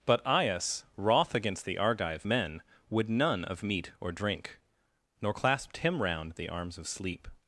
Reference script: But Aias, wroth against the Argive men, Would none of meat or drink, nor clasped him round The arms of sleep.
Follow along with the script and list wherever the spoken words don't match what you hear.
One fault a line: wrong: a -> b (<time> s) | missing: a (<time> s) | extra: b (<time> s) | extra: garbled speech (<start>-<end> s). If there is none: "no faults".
no faults